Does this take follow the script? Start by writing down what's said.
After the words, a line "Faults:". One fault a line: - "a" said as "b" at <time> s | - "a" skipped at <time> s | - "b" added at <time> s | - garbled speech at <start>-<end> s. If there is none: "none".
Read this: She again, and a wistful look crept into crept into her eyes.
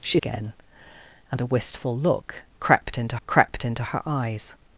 She again, and a wistful look crept into crept into her eyes.
Faults:
none